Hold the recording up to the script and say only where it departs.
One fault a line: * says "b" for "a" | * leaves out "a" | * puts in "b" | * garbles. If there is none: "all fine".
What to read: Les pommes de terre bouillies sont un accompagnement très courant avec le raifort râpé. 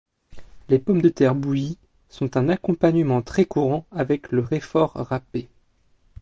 all fine